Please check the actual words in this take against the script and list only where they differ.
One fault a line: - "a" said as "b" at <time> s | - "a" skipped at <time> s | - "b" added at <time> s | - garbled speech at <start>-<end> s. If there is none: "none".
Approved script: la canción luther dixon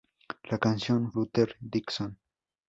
none